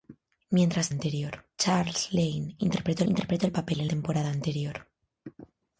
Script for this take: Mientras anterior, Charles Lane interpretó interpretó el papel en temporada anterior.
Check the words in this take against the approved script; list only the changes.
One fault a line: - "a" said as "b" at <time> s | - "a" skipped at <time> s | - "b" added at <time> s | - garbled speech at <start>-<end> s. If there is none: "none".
none